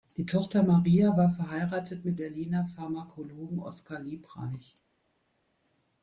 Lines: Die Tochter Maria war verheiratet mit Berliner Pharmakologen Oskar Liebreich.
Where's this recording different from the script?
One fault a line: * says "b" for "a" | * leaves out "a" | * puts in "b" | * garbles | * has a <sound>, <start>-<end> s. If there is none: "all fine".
all fine